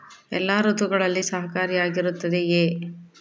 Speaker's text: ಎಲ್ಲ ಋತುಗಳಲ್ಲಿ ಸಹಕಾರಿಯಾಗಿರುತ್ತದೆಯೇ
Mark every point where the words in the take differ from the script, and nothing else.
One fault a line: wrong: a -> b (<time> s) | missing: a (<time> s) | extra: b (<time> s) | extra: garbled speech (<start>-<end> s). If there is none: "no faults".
no faults